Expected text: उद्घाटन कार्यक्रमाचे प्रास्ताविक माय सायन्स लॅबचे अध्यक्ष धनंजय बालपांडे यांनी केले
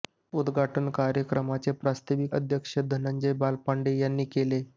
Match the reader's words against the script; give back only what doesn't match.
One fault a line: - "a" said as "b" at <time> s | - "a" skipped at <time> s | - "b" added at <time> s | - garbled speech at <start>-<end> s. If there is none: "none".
- "माय सायन्स लॅबचे" skipped at 2.4 s